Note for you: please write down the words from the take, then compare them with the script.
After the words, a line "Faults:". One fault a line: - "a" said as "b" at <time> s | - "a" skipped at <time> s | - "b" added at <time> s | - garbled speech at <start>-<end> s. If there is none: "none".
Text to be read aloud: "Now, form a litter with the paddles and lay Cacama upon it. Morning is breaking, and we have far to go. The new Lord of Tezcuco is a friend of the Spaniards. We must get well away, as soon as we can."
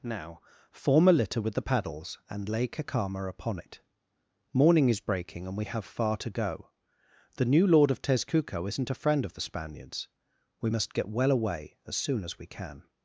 "Now, form a litter with the paddles and lay Cacama upon it. Morning is breaking, and we have far to go. The new Lord of Tezcuco isn't a friend of the Spaniards. We must get well away, as soon as we can."
Faults:
- "is" said as "isn't" at 8.7 s